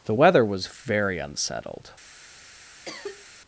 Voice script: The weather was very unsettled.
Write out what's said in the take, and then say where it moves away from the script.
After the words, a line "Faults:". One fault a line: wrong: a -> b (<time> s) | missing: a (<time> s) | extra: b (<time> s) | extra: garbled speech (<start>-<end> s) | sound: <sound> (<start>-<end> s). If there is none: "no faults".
The weather was very unsettled.
Faults:
sound: cough (2.9-3.3 s)